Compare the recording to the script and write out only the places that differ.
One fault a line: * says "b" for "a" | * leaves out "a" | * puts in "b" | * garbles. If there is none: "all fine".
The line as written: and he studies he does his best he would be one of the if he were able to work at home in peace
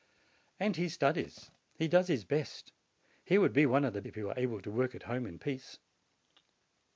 all fine